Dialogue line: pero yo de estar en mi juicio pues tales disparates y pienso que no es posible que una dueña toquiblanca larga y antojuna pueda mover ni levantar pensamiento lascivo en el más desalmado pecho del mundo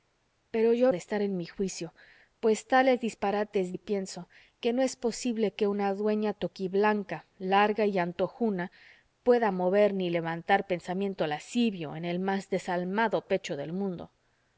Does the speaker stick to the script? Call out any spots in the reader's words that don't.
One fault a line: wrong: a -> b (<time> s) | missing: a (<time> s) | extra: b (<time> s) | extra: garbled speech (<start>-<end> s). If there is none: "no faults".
no faults